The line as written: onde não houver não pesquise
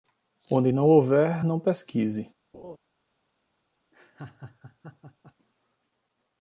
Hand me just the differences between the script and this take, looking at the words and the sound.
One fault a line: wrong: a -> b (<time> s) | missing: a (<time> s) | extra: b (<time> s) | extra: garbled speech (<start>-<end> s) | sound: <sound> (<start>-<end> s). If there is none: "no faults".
sound: laugh (2.5-2.8 s)
sound: laugh (3.9-5.3 s)